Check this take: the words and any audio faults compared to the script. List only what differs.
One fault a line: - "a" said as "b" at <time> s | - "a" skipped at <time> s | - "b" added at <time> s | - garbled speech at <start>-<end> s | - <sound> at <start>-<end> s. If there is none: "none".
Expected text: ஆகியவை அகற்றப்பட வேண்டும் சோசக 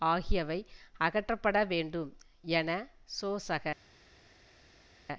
- "என" added at 2.5 s